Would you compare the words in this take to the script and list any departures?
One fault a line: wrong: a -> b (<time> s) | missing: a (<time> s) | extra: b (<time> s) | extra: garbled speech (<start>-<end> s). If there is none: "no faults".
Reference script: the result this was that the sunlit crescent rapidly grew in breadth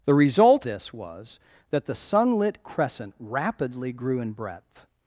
no faults